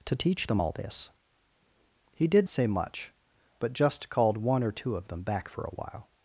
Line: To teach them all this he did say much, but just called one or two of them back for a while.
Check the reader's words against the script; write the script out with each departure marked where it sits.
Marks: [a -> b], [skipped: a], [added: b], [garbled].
To teach them all this he did say much, but just called one or two of them back for a while.